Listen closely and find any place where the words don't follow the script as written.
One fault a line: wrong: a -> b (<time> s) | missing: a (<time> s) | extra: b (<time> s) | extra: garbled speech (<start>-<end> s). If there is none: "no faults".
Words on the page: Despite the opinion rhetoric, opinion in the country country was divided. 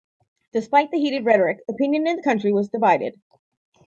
wrong: opinion -> heated (1.0 s)
missing: country (2.5 s)